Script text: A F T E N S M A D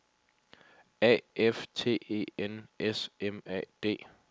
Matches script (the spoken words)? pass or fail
pass